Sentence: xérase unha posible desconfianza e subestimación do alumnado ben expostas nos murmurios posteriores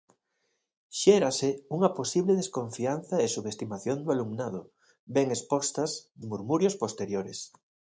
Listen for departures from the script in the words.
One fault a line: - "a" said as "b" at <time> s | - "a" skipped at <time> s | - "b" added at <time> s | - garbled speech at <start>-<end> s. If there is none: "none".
- "nos" skipped at 5.9 s